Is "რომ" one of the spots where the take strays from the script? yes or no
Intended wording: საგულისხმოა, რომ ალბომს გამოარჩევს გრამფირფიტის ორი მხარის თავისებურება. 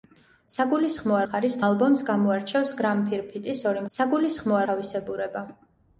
yes